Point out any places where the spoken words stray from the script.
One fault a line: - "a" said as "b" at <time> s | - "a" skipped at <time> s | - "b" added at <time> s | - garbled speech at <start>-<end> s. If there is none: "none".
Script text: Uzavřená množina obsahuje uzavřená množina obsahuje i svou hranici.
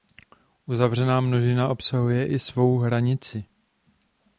- "uzavřená množina obsahuje" skipped at 2.3 s